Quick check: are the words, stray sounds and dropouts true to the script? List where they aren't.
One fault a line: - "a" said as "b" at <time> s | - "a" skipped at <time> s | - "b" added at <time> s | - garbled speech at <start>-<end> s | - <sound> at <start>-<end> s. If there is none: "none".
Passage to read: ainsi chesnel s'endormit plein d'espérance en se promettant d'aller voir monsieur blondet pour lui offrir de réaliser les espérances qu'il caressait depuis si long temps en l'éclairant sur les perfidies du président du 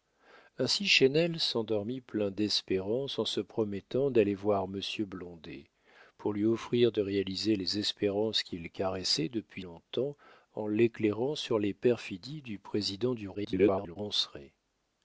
- "si" skipped at 9.6 s
- garbled speech at 13.3-14.0 s